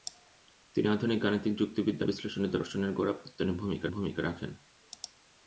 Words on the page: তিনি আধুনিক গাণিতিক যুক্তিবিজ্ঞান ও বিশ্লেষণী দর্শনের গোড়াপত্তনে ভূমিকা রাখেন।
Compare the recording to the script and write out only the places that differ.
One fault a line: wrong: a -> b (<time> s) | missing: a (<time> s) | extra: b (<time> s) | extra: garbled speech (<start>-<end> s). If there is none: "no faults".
missing: ও (2.1 s)
extra: ভূমিকা (3.9 s)